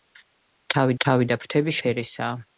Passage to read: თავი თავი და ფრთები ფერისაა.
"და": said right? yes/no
yes